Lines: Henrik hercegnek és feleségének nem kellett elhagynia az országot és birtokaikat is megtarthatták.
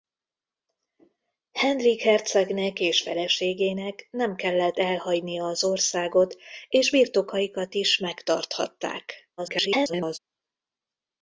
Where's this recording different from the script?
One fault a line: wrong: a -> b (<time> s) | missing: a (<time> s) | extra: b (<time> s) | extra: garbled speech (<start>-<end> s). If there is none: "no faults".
extra: garbled speech (9.4-10.2 s)